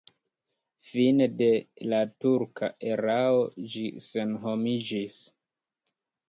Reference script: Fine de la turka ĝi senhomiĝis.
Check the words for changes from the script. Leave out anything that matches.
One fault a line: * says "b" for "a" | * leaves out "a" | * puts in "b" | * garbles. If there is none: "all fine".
* puts in "erao"